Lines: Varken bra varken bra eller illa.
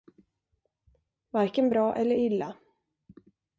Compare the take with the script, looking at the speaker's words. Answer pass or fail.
fail